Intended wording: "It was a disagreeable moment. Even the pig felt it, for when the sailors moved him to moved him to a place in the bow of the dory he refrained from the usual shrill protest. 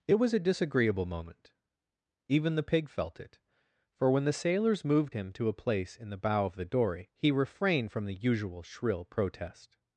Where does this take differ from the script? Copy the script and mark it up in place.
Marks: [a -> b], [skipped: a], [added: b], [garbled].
"It was a disagreeable moment. Even the pig felt it, for when the sailors moved him to [skipped: moved him to] a place in the bow of the dory he refrained from the usual shrill protest.